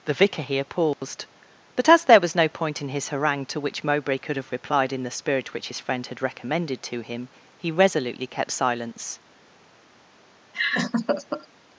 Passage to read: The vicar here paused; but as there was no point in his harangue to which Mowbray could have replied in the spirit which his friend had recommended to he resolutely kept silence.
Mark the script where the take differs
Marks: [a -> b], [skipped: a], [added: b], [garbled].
The vicar here paused; but as there was no point in his harangue to which Mowbray could have replied in the spirit which his friend had recommended to [added: him] he resolutely kept silence.